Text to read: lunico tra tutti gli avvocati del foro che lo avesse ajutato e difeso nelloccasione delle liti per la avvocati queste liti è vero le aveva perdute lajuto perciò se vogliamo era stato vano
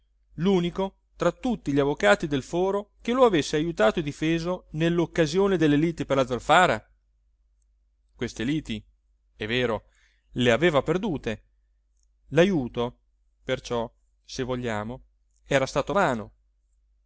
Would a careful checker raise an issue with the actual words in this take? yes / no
yes